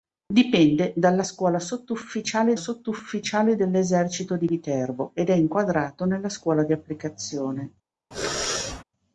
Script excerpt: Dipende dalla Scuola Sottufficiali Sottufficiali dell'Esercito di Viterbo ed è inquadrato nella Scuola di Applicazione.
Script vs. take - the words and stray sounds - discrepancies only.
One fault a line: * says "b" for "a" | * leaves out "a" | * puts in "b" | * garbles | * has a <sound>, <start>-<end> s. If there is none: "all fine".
* has a sneeze, 8.1-8.8 s